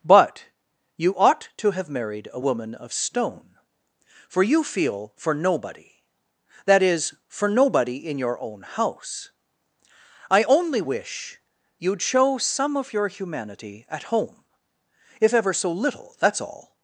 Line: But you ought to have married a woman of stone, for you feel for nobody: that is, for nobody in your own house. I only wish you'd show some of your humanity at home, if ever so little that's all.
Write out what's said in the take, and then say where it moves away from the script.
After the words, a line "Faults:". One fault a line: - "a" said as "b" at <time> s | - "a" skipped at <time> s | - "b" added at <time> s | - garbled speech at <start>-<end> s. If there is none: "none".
But you ought to have married a woman of stone, for you feel for nobody: that is, for nobody in your own house. I only wish you'd show some of your humanity at home, if ever so little that's all.
Faults:
none